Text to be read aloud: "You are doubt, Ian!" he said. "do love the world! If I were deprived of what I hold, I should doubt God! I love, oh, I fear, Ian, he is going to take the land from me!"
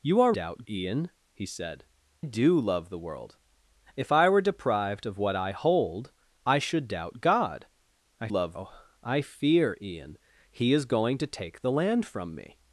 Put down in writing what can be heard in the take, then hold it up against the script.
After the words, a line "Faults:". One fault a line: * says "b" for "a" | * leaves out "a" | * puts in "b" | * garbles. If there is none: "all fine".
"You are doubt, Ian!" he said. "do love the world! If I were deprived of what I hold, I should doubt God! I love, oh, I fear, Ian, he is going to take the land from me!"
Faults:
all fine